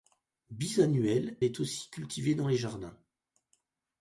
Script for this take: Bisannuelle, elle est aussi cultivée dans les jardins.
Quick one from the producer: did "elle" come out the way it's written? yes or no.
no